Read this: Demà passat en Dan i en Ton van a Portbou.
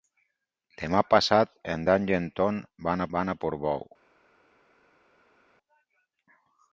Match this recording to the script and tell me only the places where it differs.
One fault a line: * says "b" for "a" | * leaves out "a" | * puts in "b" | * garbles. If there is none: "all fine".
* puts in "van"